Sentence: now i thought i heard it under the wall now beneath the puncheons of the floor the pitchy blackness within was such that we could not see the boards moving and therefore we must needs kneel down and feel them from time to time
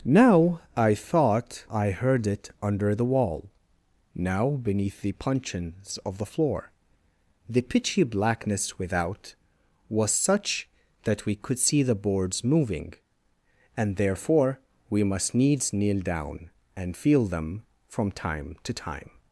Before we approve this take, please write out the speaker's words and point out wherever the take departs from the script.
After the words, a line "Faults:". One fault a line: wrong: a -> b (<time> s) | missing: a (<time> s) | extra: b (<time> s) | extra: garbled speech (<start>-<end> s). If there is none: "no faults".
now i thought i heard it under the wall now beneath the puncheons of the floor the pitchy blackness without was such that we could see the boards moving and therefore we must needs kneel down and feel them from time to time
Faults:
wrong: within -> without (8.8 s)
missing: not (11.6 s)